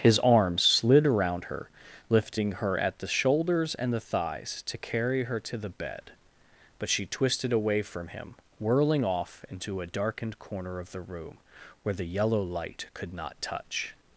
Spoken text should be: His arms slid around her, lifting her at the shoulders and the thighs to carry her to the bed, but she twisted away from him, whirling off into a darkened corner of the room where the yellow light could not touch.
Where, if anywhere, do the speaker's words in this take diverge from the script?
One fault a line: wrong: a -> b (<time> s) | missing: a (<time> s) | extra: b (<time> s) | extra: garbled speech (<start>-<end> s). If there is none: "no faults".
no faults